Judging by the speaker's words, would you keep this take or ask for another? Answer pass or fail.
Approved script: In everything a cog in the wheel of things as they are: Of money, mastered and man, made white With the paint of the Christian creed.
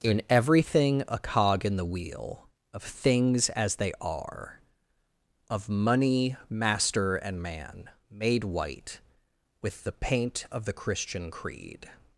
fail